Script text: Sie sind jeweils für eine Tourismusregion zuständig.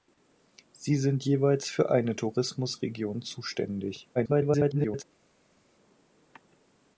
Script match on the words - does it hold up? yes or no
no